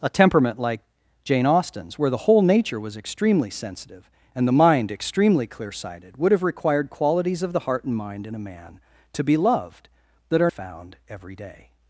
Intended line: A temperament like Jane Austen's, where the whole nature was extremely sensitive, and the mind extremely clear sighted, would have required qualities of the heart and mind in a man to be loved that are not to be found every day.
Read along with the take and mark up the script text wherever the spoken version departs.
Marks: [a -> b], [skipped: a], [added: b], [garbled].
A temperament like Jane Austen's, where the whole nature was extremely sensitive, and the mind extremely clear sighted, would have required qualities of the heart and mind in a man to be loved that are [skipped: not to be] found every day.